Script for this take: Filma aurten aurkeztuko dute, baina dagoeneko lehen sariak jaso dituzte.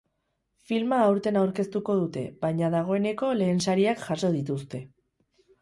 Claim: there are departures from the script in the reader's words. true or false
false